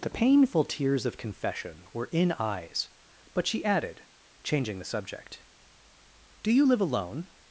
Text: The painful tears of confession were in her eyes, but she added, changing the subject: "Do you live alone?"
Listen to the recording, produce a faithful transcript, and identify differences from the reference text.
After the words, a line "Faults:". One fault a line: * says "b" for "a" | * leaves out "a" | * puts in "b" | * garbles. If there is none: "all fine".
The painful tears of confession were in eyes, but she added, changing the subject: "Do you live alone?"
Faults:
* leaves out "her"